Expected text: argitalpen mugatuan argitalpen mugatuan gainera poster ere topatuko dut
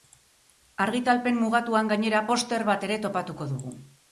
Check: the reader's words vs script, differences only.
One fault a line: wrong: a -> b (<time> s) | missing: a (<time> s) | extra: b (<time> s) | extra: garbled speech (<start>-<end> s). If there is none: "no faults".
missing: argitalpen mugatuan (1.9 s)
extra: bat (2.7 s)
wrong: dut -> dugu (3.6 s)